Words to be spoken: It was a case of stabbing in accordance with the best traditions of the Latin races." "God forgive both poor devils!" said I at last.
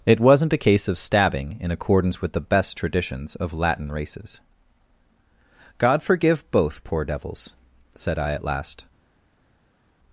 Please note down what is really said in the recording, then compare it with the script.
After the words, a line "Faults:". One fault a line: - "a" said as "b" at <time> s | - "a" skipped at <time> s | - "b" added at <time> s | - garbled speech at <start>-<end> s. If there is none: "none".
It wasn't a case of stabbing in accordance with the best traditions of Latin races." "God forgive both poor devils!" said I at last.
Faults:
- "was" said as "wasn't" at 0.2 s
- "the" skipped at 3.5 s